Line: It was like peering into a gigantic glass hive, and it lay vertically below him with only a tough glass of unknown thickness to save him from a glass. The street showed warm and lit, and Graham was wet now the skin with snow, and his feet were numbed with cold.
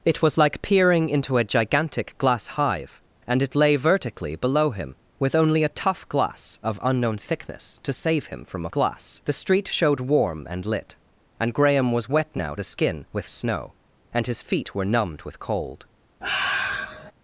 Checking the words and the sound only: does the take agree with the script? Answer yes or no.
no